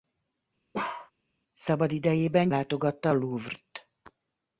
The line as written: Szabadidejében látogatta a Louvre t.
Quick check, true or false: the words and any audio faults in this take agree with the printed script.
false